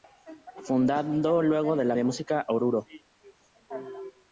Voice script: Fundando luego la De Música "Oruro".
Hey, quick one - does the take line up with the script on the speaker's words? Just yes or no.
yes